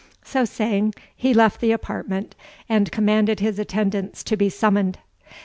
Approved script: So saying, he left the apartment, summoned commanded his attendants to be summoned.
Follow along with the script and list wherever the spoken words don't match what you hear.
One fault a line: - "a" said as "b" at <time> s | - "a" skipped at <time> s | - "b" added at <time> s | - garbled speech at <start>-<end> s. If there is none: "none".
- "summoned" said as "and" at 2.7 s